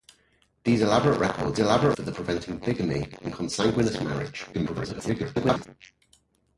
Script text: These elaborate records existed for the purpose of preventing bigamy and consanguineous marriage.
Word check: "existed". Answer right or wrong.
wrong